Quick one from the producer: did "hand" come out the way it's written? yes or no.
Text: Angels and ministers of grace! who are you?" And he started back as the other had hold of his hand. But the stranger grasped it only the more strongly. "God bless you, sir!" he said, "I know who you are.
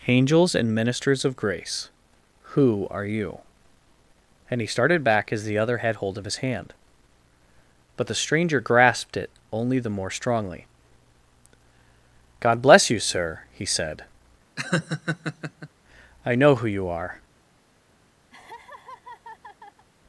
yes